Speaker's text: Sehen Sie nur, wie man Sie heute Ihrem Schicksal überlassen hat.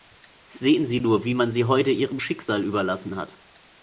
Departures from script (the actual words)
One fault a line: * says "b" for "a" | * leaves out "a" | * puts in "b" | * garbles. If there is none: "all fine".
all fine